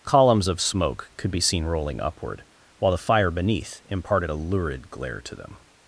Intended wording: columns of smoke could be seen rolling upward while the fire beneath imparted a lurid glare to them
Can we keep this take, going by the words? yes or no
yes